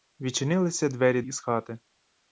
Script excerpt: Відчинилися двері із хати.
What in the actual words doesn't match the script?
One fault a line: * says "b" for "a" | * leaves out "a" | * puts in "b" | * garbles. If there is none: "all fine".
all fine